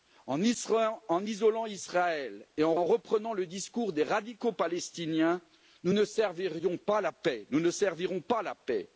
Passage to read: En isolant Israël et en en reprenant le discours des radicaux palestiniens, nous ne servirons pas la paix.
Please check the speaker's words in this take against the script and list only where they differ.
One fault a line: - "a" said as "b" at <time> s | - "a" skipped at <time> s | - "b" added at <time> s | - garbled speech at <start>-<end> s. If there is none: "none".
none